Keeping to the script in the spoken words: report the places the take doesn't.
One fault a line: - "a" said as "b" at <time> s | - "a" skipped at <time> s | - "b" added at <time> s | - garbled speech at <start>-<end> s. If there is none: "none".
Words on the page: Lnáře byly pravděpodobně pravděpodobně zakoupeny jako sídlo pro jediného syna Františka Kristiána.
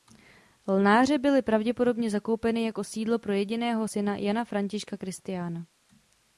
- "pravděpodobně" skipped at 2.1 s
- "Jana" added at 4.2 s